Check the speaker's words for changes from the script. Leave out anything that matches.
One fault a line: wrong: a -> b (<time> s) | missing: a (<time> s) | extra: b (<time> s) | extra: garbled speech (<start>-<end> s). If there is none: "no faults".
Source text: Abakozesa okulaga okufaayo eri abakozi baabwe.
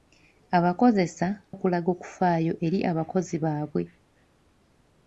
no faults